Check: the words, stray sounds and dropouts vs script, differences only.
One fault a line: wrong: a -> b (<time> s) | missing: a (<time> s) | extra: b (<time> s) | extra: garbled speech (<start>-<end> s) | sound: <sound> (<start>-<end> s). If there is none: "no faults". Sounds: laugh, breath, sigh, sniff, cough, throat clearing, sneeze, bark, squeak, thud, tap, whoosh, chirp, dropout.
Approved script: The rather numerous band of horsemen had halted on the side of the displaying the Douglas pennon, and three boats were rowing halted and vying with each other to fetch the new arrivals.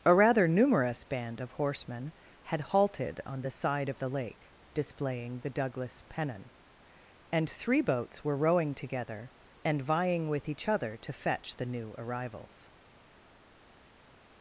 wrong: The -> A (0.0 s)
extra: lake (4.1 s)
wrong: halted -> together (8.7 s)